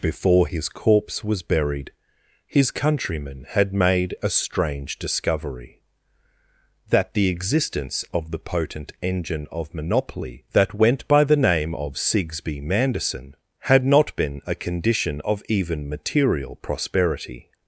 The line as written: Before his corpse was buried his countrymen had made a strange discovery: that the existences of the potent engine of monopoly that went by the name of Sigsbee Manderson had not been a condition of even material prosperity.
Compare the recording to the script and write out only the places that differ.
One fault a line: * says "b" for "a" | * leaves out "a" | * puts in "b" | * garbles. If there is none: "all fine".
* says "existence" for "existences"